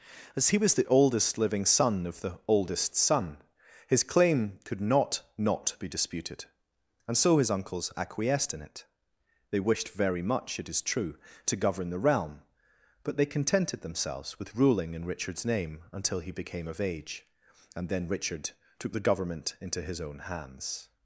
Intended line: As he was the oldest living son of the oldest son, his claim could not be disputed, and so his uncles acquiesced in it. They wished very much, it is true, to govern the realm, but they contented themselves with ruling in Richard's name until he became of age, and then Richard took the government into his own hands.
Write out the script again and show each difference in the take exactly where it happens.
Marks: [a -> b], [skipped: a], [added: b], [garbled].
As he was the oldest living son of the oldest son, his claim could not [added: not] be disputed, and so his uncles acquiesced in it. They wished very much, it is true, to govern the realm, but they contented themselves with ruling in Richard's name until he became of age, and then Richard took the government into his own hands.